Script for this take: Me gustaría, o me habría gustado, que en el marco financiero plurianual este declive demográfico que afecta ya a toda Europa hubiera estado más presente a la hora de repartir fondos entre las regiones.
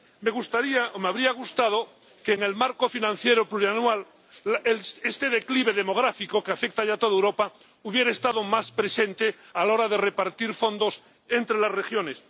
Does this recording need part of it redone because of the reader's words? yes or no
no